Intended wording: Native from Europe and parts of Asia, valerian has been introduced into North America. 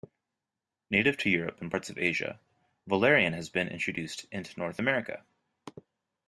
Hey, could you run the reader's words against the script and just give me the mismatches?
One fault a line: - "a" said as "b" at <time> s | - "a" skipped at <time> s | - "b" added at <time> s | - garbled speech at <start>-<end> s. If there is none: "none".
- "from" said as "to" at 1.2 s